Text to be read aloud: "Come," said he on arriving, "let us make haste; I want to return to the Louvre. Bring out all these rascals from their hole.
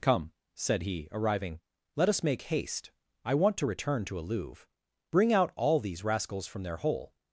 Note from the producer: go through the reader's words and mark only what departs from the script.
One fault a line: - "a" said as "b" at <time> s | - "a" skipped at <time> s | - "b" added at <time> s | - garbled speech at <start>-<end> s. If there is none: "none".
- "on" skipped at 1.1 s
- "the" said as "a" at 4.2 s